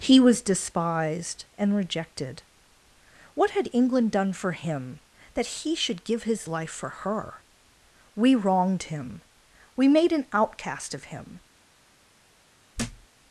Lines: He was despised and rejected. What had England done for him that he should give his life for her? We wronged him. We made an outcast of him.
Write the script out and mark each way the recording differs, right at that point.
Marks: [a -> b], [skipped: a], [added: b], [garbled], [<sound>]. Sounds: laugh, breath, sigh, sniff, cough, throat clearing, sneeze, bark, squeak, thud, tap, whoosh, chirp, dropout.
He was despised and rejected. What had England done for him that he should give his life for her? We wronged him. We made an outcast of him. [thud]